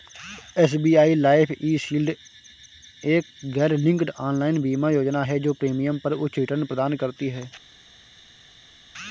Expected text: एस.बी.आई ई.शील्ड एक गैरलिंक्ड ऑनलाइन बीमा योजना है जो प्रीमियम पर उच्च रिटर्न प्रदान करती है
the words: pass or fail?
fail